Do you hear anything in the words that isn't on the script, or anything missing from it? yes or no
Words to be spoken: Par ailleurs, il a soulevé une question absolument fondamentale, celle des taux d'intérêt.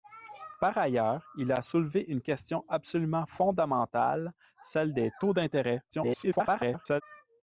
yes